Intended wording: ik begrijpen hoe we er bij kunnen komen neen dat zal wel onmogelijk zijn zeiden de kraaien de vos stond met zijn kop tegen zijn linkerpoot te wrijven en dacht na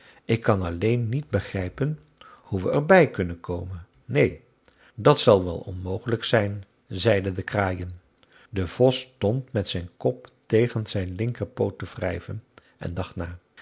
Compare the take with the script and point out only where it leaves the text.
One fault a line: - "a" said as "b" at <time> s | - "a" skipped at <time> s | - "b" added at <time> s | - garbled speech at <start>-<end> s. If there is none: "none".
- "kan alleen niet" added at 0.4 s